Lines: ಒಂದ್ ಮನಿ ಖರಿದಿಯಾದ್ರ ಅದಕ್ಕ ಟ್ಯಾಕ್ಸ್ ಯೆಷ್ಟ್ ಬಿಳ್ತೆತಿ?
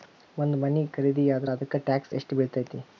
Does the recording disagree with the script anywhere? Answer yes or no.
no